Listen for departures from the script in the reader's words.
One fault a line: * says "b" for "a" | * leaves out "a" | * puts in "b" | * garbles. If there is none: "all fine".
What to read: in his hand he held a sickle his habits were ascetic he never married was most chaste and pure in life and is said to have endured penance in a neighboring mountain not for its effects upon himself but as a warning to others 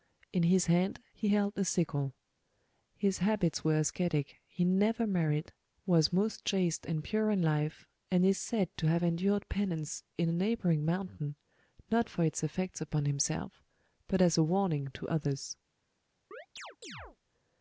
all fine